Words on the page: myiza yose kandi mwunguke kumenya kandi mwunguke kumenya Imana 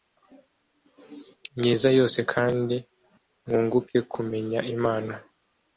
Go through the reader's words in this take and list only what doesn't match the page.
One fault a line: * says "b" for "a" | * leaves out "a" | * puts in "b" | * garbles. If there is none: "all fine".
* leaves out "kandi mwunguke kumenya"